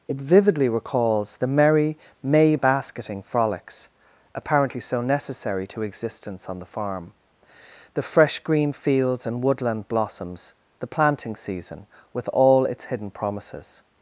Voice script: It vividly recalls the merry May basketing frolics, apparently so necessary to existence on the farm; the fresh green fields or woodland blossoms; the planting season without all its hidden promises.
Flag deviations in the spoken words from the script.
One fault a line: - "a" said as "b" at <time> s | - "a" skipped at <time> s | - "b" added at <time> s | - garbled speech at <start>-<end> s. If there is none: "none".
- "or" said as "and" at 9.3 s
- "without" said as "with" at 12.1 s